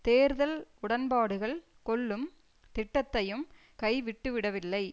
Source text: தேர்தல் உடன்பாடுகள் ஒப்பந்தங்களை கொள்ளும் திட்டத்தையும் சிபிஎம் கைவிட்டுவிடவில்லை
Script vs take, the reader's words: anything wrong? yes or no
yes